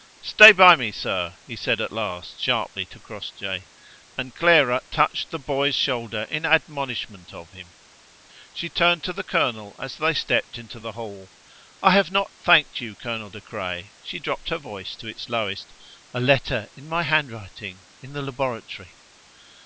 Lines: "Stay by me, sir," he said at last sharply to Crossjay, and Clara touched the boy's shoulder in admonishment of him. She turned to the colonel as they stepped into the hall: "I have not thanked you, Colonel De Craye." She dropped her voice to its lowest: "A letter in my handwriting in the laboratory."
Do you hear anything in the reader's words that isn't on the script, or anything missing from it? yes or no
no